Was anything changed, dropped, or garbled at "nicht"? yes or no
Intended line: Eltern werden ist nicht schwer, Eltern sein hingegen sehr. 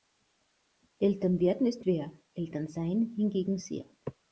yes